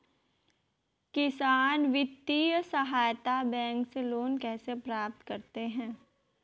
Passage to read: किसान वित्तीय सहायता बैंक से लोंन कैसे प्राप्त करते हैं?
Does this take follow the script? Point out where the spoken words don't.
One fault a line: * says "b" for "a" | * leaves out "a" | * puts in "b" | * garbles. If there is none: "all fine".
all fine